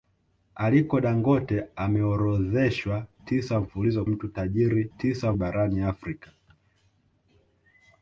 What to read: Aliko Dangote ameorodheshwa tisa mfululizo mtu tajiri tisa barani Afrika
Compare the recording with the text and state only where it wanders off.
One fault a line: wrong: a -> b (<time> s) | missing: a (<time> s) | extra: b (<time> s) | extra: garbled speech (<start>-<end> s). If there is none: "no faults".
no faults